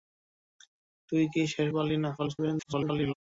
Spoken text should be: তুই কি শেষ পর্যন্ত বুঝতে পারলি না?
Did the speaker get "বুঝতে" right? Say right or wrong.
wrong